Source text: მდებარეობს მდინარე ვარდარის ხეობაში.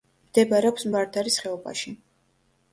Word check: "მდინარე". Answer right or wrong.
wrong